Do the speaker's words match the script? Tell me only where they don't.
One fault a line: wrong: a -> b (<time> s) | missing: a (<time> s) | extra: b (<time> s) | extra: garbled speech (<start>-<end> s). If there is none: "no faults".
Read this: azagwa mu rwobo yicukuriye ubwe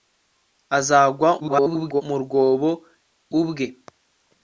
extra: garbled speech (1.4-2.0 s)
missing: yicukuriye (2.7 s)